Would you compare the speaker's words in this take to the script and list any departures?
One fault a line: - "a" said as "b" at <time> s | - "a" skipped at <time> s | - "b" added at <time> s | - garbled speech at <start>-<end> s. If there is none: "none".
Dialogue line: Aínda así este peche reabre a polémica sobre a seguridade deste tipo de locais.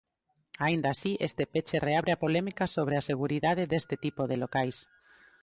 none